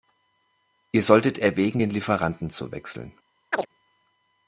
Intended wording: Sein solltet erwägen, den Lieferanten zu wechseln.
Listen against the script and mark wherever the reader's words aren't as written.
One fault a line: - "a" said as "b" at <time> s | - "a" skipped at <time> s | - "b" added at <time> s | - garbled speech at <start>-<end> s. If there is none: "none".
- "Sein" said as "Ihr" at 0.9 s